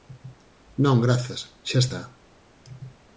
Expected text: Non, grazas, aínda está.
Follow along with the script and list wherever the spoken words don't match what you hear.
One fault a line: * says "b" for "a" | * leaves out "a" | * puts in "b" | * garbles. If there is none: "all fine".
* says "xa" for "aínda"